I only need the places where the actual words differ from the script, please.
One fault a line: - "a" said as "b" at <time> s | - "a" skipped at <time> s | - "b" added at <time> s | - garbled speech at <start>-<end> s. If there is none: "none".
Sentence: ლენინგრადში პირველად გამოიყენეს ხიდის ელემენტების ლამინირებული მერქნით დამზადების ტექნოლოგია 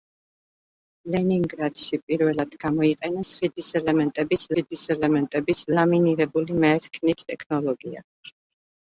- "ხიდის ელემენტების" added at 4.5 s
- "დამზადების" skipped at 7.3 s